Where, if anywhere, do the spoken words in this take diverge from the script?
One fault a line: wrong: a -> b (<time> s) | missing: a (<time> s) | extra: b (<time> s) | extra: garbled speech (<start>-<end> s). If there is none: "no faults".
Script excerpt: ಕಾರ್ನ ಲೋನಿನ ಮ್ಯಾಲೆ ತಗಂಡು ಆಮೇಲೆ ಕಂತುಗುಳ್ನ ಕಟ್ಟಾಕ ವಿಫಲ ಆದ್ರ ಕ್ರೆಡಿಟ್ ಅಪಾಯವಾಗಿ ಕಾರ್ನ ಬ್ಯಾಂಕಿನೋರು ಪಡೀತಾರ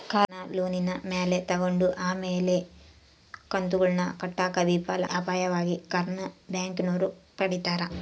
missing: ಆದ್ರ ಕ್ರೆಡಿಟ್ (5.0 s)